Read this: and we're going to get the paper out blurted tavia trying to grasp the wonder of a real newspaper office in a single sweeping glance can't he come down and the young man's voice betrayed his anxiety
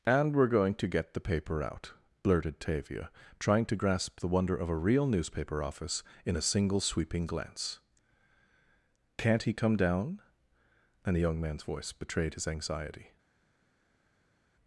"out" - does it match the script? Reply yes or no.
yes